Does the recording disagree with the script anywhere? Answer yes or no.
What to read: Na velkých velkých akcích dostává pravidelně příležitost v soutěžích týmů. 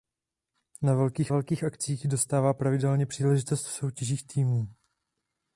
no